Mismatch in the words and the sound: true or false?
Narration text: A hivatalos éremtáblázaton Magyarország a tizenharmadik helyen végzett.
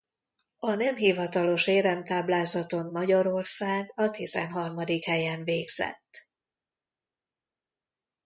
true